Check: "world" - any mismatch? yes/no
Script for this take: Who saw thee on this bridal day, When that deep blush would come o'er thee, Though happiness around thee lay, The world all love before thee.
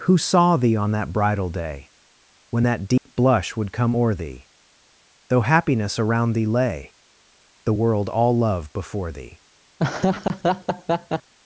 no